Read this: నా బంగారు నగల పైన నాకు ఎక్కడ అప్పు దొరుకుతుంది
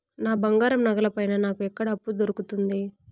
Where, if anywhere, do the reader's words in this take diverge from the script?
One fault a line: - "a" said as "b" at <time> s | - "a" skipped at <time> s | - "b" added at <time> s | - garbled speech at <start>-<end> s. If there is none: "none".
none